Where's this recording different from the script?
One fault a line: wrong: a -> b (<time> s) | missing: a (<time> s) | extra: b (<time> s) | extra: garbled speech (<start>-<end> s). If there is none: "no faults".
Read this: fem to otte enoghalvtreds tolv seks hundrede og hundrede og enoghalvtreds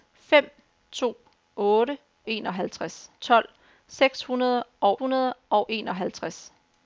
no faults